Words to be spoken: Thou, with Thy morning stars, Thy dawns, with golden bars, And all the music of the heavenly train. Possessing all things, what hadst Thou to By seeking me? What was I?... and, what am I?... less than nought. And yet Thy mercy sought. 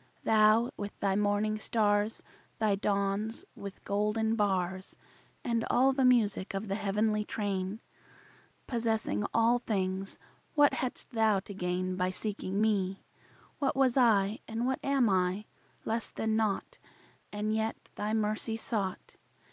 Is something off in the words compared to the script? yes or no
yes